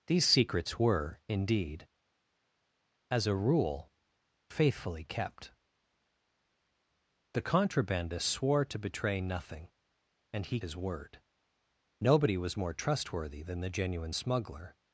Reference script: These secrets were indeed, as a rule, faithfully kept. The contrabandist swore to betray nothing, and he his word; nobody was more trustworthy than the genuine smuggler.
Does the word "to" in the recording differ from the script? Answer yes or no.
no